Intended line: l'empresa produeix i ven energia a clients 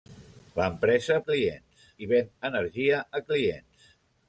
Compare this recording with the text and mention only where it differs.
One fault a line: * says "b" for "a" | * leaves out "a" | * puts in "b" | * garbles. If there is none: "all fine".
* says "clients" for "produeix"